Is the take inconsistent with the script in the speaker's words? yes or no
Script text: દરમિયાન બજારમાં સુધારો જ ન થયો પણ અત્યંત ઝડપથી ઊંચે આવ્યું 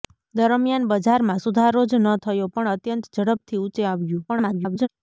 yes